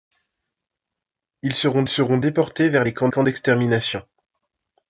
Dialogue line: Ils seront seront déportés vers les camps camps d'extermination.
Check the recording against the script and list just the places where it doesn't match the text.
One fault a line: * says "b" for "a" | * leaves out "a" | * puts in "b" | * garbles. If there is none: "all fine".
all fine